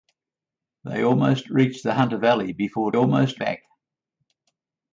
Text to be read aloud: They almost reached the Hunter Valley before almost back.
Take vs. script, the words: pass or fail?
pass